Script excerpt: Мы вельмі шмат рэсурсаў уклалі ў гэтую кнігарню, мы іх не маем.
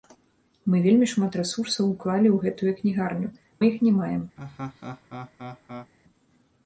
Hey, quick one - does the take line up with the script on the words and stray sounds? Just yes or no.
no